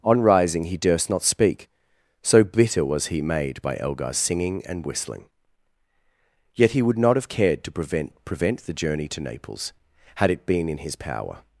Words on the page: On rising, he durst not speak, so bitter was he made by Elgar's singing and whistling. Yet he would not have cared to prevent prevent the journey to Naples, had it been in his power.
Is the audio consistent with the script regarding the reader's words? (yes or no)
yes